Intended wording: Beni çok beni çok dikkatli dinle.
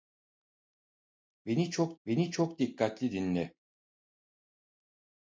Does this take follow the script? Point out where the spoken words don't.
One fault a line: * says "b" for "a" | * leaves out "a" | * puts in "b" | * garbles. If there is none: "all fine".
all fine